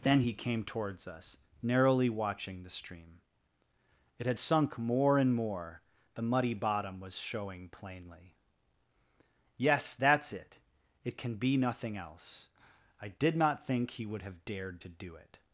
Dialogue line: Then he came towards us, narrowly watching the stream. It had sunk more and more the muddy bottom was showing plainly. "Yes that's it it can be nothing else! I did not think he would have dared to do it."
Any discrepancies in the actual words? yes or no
no